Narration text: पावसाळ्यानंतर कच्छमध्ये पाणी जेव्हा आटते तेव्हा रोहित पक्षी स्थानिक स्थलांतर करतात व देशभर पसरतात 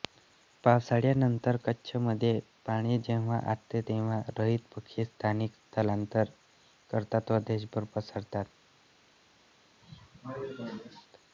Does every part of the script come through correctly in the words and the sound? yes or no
no